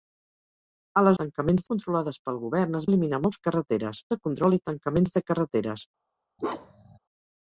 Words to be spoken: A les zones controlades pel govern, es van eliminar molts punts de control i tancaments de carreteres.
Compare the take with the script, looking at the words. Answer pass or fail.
fail